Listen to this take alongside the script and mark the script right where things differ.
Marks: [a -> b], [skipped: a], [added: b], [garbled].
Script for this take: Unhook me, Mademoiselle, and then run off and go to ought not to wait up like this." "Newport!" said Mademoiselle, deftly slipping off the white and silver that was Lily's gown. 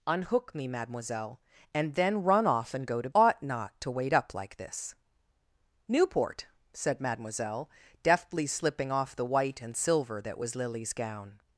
Unhook me, Mademoiselle, and then run off and go to ought not to wait up like this." "Newport!" said Mademoiselle, deftly slipping off the white and silver that was Lily's gown.